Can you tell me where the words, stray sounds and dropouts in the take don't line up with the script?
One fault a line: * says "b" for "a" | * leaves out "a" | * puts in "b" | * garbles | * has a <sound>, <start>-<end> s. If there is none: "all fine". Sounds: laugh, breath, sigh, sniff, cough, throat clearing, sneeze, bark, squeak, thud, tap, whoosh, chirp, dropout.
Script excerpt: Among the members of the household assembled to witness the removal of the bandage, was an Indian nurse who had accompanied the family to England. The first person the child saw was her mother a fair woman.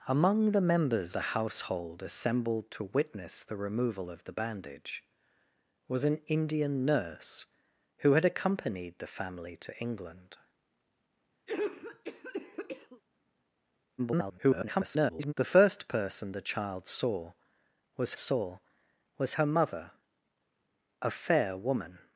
* leaves out "of"
* has a cough, 11.5-13.0 s
* garbles
* puts in "saw was"